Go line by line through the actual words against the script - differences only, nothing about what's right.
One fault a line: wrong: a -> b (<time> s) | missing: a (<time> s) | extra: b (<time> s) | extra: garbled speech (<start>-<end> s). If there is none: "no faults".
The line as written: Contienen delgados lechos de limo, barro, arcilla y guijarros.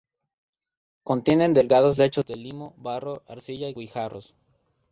no faults